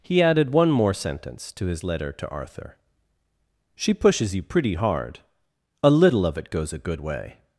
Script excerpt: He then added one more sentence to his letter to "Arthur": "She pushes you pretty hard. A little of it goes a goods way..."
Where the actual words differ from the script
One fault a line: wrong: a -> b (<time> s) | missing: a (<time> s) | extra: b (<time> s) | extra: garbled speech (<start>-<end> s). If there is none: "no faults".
missing: then (0.2 s)
wrong: goods -> good (6.8 s)